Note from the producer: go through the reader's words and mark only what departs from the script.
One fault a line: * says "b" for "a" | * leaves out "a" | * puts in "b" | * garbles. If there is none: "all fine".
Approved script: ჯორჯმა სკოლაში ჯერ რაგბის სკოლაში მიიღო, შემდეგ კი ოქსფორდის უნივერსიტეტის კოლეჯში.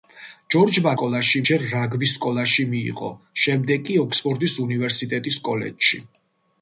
all fine